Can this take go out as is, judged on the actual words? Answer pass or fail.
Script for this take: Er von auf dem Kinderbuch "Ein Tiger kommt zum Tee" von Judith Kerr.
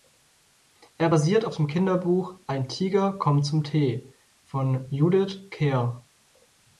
fail